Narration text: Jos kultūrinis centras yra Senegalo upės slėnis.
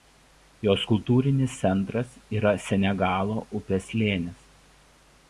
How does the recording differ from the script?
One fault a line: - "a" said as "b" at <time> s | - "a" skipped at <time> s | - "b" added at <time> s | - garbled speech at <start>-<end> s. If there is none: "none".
none